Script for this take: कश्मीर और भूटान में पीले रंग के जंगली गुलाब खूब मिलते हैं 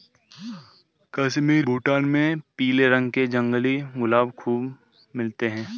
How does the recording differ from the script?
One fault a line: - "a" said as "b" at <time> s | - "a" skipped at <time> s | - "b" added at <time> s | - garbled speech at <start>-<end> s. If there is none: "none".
- "और" skipped at 1.7 s